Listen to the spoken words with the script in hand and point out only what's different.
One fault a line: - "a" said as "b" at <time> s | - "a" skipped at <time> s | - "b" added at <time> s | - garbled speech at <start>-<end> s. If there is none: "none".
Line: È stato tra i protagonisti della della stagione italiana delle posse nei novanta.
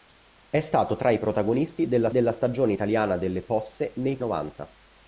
none